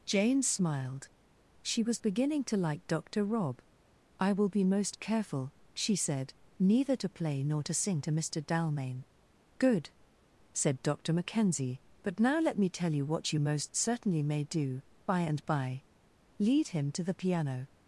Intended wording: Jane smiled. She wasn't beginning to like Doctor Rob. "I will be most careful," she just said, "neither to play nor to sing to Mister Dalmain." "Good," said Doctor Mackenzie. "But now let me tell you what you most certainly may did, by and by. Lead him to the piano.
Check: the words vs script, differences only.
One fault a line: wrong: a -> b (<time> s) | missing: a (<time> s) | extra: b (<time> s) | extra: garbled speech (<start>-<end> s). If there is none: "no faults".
wrong: wasn't -> was (1.8 s)
missing: just (6.0 s)
wrong: did -> do (14.4 s)